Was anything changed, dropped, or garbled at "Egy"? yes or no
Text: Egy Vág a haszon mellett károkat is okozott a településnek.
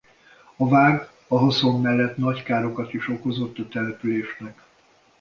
yes